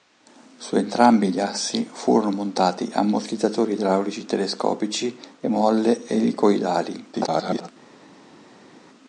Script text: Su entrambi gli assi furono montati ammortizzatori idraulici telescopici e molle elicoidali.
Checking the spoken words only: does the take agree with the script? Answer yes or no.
no